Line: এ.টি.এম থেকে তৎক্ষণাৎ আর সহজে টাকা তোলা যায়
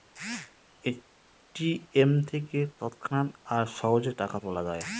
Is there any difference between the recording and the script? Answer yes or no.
no